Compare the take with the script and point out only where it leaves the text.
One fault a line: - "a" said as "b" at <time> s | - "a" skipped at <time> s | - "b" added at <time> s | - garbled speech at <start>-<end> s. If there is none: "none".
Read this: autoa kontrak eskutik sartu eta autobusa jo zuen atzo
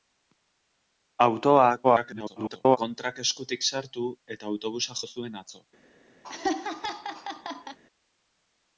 - garbled speech at 1.8-2.8 s